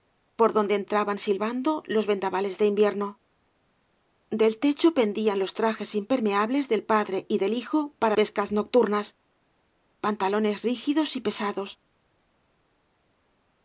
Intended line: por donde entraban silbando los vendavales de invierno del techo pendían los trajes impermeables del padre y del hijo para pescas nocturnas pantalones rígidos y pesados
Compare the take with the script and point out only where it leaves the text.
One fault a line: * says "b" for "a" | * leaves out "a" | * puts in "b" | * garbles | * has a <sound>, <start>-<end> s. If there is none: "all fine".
all fine